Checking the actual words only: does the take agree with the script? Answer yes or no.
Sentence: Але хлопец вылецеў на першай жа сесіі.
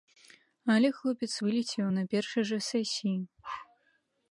yes